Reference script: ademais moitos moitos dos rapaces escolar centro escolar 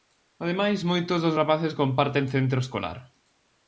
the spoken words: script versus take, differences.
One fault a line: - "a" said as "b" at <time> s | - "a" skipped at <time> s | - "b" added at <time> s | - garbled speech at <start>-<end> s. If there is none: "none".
- "moitos" skipped at 1.2 s
- "escolar" said as "comparten" at 1.8 s